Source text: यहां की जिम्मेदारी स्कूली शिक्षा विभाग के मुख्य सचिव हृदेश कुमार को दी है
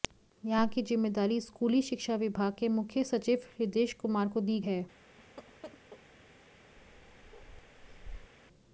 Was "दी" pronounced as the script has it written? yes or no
yes